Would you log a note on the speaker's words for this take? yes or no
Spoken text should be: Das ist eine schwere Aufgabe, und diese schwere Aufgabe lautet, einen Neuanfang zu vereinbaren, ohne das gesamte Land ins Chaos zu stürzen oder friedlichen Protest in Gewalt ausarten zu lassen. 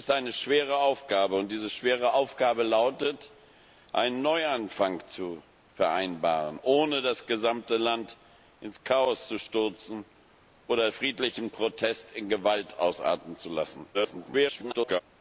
yes